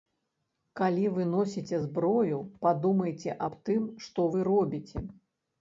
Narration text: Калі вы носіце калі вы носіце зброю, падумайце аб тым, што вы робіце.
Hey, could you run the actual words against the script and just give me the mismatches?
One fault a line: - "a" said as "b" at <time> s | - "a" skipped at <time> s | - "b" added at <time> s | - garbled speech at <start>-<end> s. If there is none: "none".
- "калі вы носіце" skipped at 1.8 s